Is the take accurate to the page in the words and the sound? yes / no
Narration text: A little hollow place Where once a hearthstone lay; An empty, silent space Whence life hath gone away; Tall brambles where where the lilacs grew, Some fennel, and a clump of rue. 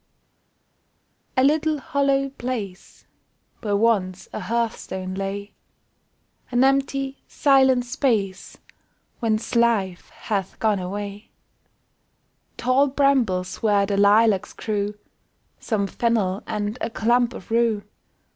no